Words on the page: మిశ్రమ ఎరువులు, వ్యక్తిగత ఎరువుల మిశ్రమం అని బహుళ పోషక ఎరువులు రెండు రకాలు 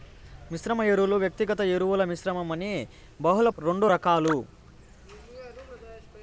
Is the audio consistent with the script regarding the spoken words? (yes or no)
no